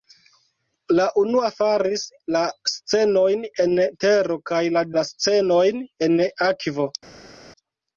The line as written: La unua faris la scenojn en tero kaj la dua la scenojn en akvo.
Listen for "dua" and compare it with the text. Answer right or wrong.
wrong